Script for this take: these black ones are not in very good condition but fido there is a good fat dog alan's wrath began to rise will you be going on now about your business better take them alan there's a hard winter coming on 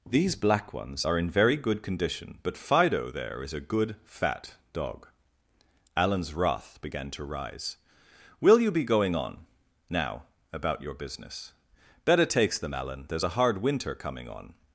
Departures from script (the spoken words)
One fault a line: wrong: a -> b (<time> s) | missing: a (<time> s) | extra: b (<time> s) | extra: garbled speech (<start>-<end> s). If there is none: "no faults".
missing: not (1.2 s)
wrong: take -> takes (12.2 s)